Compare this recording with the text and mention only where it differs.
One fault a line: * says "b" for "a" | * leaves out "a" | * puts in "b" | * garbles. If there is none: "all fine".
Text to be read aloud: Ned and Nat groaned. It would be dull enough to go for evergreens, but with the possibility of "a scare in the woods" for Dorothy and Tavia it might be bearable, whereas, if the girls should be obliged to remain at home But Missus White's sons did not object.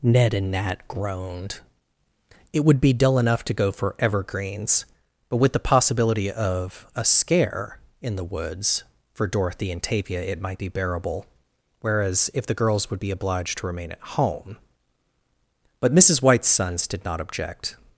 * says "would" for "should"